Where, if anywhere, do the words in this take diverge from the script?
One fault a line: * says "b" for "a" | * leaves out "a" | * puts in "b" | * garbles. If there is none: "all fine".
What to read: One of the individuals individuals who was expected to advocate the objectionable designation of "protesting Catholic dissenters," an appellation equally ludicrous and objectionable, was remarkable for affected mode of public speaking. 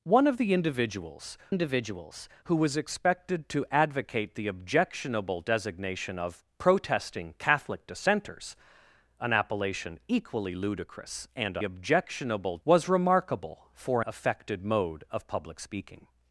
all fine